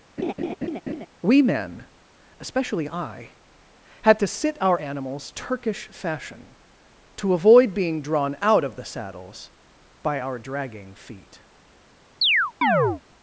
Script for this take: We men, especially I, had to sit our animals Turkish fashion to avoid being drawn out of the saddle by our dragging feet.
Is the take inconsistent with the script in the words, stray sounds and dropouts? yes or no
yes